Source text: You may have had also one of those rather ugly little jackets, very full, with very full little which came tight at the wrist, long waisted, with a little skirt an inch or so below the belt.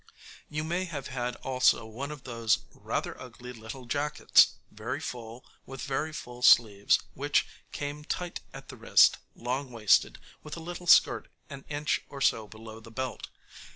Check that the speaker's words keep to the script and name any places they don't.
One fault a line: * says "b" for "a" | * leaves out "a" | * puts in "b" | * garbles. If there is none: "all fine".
* says "sleeves" for "little"